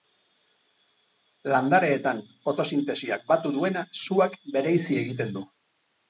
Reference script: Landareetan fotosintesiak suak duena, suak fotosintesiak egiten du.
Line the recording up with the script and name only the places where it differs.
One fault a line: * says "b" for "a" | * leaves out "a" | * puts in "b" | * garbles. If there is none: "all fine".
* says "batu" for "suak"
* says "bereizi" for "fotosintesiak"